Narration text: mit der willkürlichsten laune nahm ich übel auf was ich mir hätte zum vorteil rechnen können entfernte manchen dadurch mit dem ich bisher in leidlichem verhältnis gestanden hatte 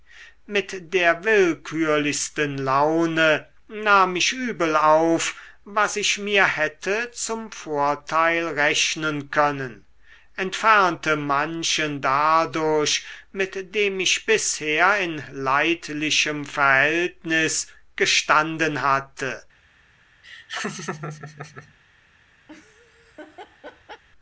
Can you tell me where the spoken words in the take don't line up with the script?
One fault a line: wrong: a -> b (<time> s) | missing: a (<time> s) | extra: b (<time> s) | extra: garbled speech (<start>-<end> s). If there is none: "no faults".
no faults